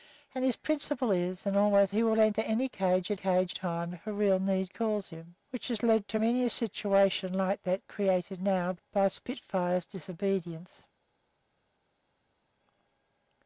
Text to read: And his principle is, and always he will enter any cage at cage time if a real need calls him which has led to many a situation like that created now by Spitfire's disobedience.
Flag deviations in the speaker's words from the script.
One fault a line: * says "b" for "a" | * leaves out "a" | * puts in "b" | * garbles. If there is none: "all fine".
all fine